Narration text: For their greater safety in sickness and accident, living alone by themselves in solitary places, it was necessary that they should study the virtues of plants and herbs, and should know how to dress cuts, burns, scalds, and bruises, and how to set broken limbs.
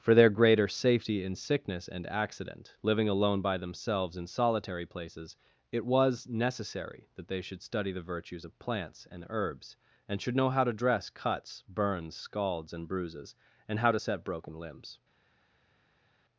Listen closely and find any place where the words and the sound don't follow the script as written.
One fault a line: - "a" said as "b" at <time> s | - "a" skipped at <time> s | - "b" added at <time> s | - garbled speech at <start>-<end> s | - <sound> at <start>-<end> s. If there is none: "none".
none